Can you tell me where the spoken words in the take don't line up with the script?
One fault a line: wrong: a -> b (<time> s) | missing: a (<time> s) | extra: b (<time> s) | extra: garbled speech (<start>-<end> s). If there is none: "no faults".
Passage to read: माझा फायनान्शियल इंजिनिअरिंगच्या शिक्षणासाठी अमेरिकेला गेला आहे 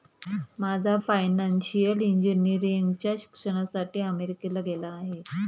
no faults